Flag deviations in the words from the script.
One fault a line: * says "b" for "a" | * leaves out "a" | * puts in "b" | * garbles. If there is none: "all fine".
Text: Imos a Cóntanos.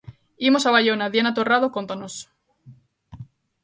* puts in "Baiona Diana Torrado"